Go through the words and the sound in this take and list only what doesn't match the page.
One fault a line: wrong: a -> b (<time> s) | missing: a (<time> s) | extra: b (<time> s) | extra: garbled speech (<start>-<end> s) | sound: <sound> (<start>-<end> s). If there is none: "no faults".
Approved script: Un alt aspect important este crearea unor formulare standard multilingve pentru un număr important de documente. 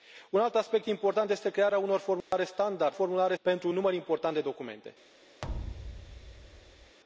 sound: dropout (2.2-2.3 s)
wrong: multilingve -> formulare (2.9 s)
sound: thud (5.4-7.0 s)